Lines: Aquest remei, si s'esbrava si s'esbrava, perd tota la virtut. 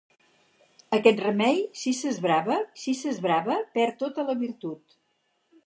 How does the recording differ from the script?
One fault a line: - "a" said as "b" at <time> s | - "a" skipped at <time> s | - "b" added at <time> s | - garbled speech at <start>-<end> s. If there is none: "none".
none